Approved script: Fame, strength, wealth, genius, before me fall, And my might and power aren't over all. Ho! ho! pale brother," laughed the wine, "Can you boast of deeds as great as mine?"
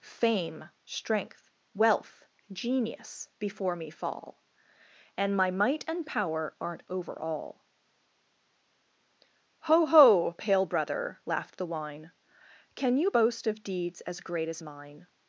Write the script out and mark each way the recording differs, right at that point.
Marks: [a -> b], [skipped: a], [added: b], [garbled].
Fame, strength, wealth, genius, before me fall, And my might and power aren't over all. Ho! ho! pale brother," laughed the wine, "Can you boast of deeds as great as mine?"